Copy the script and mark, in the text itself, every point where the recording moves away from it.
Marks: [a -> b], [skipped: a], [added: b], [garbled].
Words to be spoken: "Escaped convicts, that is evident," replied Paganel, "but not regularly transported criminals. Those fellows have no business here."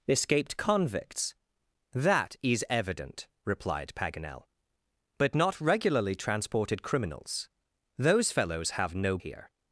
"Escaped convicts, that is evident," replied Paganel, "but not regularly transported criminals. Those fellows have no [skipped: business] here."